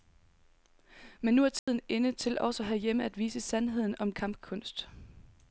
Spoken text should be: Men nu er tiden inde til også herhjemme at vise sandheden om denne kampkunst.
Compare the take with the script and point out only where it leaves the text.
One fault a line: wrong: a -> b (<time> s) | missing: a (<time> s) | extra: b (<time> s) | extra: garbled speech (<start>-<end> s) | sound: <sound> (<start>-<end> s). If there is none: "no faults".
sound: dropout (1.6-1.7 s)
missing: denne (4.1 s)